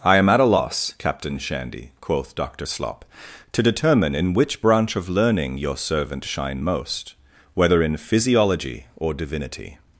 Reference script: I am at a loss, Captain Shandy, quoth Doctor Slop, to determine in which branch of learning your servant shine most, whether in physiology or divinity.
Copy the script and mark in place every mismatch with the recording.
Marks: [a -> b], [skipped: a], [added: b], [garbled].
I am at a loss, Captain Shandy, quoth Doctor Slop, to determine in which branch of learning your servant shine most, whether in physiology or divinity.